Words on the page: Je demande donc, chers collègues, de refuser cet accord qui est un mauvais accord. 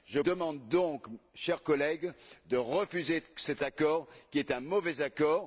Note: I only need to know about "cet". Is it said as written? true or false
true